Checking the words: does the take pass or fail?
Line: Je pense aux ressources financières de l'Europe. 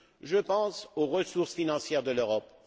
pass